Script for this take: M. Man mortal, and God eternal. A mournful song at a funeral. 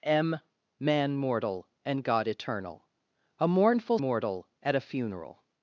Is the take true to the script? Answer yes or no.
no